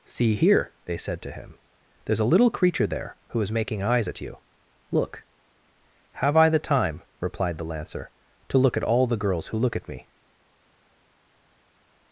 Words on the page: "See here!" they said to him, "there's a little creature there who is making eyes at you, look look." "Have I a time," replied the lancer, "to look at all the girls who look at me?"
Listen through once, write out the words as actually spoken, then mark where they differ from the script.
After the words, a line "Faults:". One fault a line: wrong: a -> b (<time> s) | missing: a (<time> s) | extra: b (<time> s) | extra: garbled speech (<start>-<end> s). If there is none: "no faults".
"See here!" they said to him, "there's a little creature there who is making eyes at you, look." "Have I the time," replied the lancer, "to look at all the girls who look at me?"
Faults:
missing: look (5.2 s)
wrong: a -> the (6.5 s)